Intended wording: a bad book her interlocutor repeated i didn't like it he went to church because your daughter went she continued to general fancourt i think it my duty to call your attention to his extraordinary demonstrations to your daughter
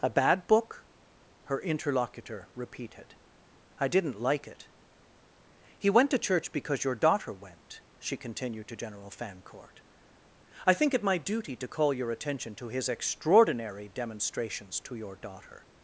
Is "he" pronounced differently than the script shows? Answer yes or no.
no